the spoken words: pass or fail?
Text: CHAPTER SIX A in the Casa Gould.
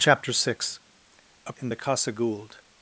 pass